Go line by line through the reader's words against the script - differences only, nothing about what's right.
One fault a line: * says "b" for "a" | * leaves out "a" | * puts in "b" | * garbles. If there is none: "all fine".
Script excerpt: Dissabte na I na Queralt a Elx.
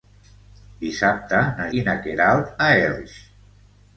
all fine